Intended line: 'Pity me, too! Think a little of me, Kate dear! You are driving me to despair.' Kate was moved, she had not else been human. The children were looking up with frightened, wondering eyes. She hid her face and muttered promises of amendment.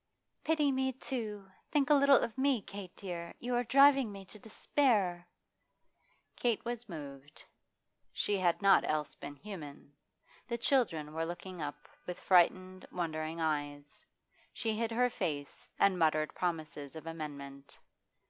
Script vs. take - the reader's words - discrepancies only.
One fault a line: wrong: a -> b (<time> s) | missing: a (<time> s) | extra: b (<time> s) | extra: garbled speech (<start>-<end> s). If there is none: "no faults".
no faults